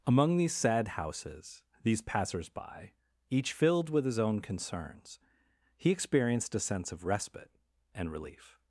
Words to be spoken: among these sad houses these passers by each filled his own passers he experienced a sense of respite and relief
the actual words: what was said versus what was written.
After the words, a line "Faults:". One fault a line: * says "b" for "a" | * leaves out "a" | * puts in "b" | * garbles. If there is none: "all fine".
among these sad houses these passers by each filled with his own concerns he experienced a sense of respite and relief
Faults:
* puts in "with"
* says "concerns" for "passers"